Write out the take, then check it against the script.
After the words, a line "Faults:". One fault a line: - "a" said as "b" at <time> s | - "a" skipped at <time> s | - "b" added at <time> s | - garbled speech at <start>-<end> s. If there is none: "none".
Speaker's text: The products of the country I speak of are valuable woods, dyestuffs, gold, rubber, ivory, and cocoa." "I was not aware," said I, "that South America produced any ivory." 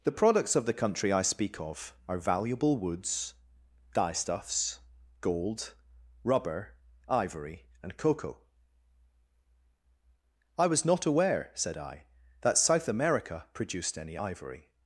The products of the country I speak of are valuable woods, dyestuffs, gold, rubber, ivory, and cocoa." "I was not aware," said I, "that South America produced any ivory."
Faults:
none